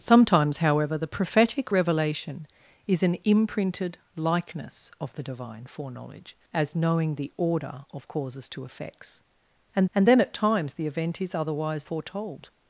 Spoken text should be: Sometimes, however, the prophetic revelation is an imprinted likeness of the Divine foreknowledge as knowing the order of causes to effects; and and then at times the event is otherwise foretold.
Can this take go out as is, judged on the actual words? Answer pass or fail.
pass